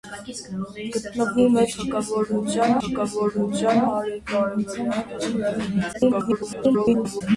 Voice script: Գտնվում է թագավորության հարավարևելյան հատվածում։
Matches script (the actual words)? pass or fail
fail